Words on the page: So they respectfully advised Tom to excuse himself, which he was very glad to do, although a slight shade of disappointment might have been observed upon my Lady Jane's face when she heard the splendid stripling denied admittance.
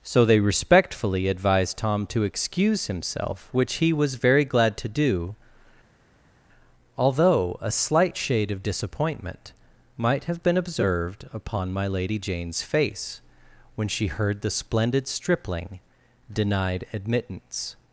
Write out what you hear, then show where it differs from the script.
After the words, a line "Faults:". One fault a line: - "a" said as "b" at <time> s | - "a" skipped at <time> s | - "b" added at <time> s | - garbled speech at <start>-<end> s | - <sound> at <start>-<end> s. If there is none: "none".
So they respectfully advised Tom to excuse himself, which he was very glad to do, although a slight shade of disappointment might have been observed upon my Lady Jane's face when she heard the splendid stripling denied admittance.
Faults:
none